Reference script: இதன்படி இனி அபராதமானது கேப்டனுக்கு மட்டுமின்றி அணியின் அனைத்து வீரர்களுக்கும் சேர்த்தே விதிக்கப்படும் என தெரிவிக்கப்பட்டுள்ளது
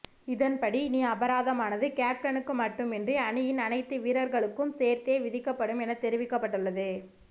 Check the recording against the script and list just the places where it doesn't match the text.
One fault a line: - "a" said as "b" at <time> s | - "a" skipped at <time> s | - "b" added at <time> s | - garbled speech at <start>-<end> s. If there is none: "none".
none